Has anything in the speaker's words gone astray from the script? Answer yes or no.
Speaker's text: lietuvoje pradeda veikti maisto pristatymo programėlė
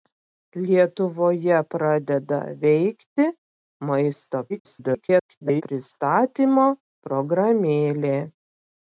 yes